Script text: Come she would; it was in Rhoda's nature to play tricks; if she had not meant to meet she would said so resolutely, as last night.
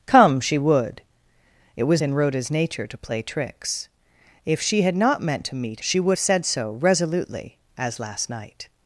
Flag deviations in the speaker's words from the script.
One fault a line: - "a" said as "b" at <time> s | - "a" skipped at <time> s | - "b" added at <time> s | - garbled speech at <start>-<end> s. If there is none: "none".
none